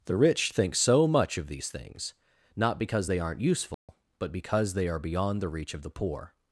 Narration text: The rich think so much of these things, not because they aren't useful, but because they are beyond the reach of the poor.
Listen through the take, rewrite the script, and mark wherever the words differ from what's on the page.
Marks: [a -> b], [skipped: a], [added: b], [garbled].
The rich think so much of these things, not because they aren't useful, but because they are beyond the reach of the poor.